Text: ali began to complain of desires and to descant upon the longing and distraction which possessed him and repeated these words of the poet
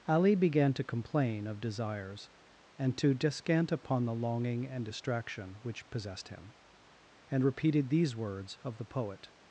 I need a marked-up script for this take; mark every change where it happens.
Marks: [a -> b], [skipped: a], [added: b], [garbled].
ali began to complain of desires and to descant upon the longing and distraction which possessed him and repeated these words of the poet